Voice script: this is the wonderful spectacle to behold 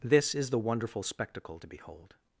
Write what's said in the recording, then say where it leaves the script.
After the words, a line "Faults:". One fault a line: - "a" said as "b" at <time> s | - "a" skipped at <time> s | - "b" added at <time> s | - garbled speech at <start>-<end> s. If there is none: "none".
this is the wonderful spectacle to behold
Faults:
none